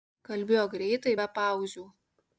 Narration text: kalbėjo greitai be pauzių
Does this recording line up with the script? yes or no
yes